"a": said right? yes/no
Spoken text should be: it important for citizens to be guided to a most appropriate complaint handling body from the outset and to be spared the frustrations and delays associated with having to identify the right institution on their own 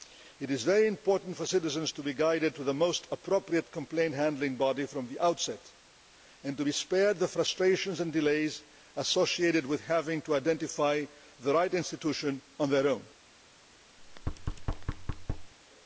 no